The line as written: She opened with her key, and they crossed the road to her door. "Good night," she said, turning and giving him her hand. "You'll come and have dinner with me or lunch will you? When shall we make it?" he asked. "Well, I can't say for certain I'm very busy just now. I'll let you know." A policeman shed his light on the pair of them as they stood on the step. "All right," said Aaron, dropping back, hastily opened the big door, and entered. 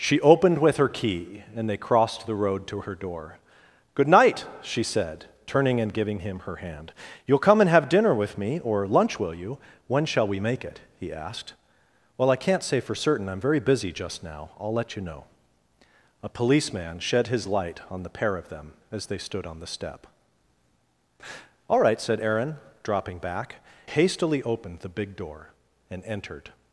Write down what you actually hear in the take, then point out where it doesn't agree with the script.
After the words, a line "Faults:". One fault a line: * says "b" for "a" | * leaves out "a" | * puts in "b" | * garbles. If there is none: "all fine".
She opened with her key, and they crossed the road to her door. "Good night," she said, turning and giving him her hand. "You'll come and have dinner with me or lunch will you? When shall we make it?" he asked. "Well, I can't say for certain I'm very busy just now. I'll let you know." A policeman shed his light on the pair of them as they stood on the step. "All right," said Aaron, dropping back, hastily opened the big door, and entered.
Faults:
all fine